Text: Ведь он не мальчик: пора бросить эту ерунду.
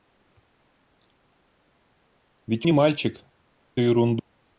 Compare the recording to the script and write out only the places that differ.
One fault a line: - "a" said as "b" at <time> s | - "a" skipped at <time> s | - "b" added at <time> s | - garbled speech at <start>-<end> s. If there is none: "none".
- "он" skipped at 2.7 s
- "пора бросить эту" skipped at 3.2 s